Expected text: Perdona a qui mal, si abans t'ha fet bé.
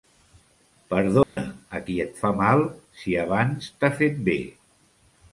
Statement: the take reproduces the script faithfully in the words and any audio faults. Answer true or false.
false